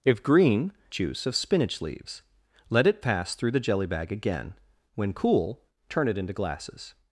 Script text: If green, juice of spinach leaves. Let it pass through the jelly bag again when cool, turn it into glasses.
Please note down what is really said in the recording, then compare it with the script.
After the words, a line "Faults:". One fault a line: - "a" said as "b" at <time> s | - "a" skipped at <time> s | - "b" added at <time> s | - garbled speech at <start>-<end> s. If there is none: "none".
If green, juice of spinach leaves. Let it pass through the jelly bag again when cool, turn it into glasses.
Faults:
none